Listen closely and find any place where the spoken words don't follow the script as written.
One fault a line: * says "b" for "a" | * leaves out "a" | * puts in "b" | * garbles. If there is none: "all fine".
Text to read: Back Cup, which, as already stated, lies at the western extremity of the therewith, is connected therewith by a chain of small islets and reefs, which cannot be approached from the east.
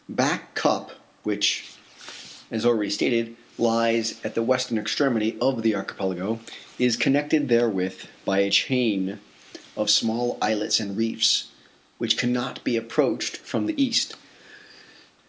* says "archipelago" for "therewith"